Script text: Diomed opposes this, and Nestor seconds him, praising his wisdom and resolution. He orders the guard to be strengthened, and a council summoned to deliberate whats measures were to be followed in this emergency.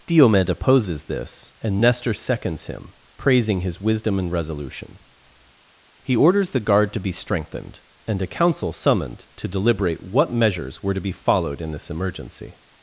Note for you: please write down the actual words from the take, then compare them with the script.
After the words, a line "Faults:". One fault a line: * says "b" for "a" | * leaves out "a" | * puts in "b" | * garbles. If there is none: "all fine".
Diomed opposes this, and Nestor seconds him, praising his wisdom and resolution. He orders the guard to be strengthened, and a council summoned to deliberate what measures were to be followed in this emergency.
Faults:
* says "what" for "whats"